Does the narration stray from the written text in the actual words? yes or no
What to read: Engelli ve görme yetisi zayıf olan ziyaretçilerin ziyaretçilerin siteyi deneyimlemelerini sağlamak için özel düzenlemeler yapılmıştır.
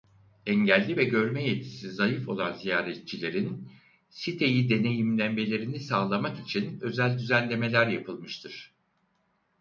yes